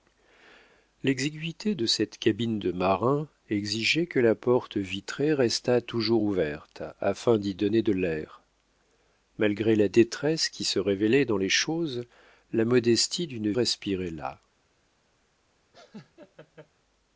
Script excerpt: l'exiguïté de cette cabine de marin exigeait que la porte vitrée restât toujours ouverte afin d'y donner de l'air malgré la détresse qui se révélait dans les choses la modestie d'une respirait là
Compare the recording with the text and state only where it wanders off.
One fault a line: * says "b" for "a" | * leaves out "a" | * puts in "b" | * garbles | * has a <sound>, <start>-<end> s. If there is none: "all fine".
* has a laugh, 15.7-16.7 s